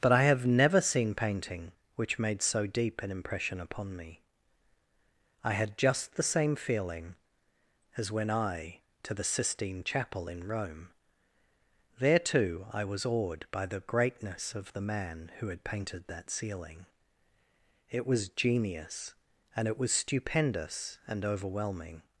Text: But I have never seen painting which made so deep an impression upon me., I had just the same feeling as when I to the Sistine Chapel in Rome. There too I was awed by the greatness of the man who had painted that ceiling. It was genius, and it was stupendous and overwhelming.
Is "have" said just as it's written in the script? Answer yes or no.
yes